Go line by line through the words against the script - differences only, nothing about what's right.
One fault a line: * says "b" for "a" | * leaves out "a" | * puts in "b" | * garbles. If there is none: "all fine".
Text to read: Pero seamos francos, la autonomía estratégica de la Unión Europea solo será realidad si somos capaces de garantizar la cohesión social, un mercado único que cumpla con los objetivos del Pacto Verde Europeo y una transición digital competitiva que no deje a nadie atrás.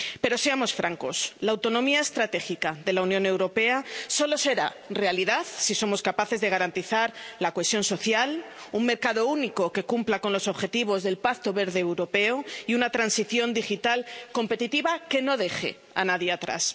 all fine